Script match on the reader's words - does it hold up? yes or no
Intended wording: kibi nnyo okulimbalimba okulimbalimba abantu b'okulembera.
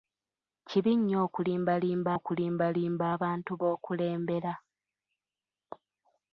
yes